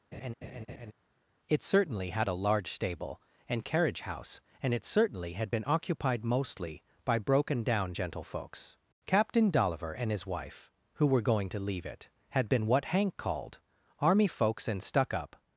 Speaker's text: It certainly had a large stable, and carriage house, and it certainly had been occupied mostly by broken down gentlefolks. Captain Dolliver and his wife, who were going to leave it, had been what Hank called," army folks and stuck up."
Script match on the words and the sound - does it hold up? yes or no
no